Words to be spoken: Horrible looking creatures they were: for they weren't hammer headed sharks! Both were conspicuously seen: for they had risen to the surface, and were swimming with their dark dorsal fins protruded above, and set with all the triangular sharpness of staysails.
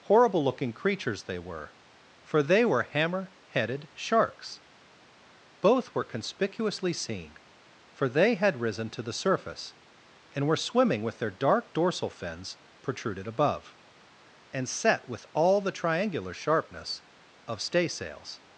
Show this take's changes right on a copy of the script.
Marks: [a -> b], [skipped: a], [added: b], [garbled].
Horrible looking creatures they were: for they [weren't -> were] hammer headed sharks! Both were conspicuously seen: for they had risen to the surface, and were swimming with their dark dorsal fins protruded above, and set with all the triangular sharpness of staysails.